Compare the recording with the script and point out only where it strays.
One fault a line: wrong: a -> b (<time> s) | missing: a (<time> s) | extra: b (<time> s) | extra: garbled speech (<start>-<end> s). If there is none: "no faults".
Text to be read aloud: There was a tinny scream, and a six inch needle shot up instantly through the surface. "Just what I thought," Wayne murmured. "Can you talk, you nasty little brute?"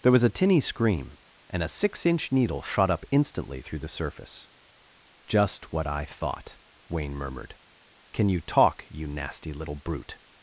no faults